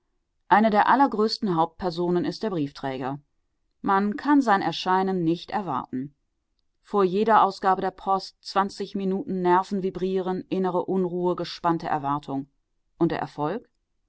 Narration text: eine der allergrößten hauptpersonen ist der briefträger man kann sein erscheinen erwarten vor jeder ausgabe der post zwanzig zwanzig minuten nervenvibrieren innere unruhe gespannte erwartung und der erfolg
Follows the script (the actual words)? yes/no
no